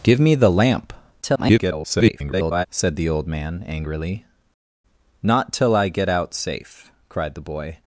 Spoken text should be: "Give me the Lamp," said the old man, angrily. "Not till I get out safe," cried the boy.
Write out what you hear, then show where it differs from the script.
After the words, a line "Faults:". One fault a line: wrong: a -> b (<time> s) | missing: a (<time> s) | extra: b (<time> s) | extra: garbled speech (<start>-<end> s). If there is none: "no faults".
"Give me the Lamp," [garbled] said the old man, angrily. "Not till I get out safe," cried the boy.
Faults:
extra: garbled speech (1.2-2.7 s)